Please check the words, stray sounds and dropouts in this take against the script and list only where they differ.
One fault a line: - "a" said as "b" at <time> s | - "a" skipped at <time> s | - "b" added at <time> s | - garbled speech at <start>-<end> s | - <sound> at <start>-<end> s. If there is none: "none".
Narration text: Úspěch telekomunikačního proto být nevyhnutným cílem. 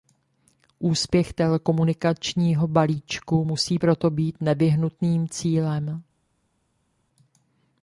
- "balíčku musí" added at 2.7 s